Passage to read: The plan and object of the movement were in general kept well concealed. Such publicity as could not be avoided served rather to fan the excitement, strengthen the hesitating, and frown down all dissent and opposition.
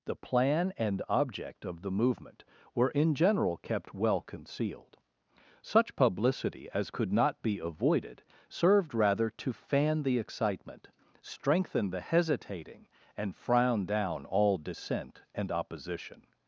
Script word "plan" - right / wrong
right